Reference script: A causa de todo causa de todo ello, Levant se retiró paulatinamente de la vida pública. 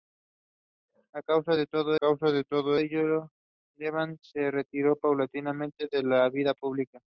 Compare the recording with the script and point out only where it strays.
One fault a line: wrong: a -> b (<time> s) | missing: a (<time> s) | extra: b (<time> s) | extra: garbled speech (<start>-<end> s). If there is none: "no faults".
no faults